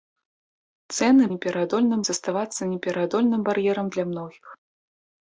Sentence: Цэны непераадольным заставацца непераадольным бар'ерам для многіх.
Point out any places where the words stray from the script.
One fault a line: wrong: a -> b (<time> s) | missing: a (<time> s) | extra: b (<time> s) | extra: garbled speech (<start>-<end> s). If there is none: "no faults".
no faults